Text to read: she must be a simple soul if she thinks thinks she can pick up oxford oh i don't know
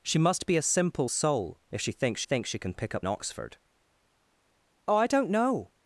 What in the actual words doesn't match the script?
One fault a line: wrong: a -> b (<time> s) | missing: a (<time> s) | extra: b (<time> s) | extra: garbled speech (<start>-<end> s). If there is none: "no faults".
no faults